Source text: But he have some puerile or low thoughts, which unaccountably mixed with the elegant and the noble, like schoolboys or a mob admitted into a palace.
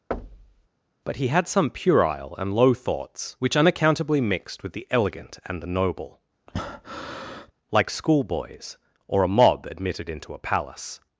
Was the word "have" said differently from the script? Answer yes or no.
yes